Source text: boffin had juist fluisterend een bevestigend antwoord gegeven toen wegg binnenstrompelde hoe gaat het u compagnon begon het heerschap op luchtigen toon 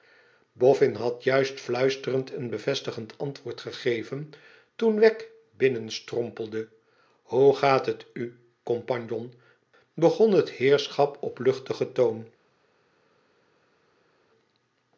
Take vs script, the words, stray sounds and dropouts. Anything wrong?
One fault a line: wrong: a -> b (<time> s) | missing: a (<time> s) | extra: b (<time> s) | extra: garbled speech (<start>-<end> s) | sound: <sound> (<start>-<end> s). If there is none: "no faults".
no faults